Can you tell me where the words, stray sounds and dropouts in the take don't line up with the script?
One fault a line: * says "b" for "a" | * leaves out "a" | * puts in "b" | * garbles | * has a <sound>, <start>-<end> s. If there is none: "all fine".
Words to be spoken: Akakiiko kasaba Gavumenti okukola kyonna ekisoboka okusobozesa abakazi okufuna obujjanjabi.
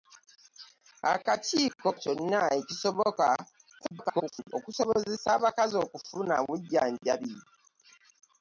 * leaves out "kasaba Gavumenti okukola"
* garbles